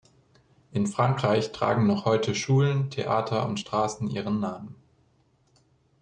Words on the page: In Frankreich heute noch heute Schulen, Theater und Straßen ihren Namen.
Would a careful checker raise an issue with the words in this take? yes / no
yes